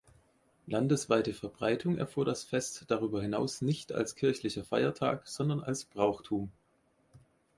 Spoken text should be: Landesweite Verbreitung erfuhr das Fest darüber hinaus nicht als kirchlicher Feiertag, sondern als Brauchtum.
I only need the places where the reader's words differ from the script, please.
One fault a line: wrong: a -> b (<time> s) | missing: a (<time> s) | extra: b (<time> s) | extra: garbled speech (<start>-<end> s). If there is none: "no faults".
no faults